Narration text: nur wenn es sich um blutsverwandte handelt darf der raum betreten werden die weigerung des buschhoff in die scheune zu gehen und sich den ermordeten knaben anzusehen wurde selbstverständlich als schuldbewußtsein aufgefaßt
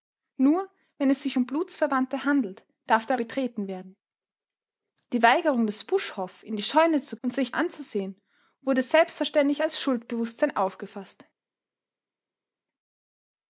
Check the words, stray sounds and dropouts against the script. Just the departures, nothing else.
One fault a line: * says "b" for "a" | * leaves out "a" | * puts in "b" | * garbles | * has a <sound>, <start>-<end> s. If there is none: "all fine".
* leaves out "raum"
* leaves out "gehen"
* leaves out "den ermordeten knaben"